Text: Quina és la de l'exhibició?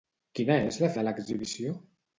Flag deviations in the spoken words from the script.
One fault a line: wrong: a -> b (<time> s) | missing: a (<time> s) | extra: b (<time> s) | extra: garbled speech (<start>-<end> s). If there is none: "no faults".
no faults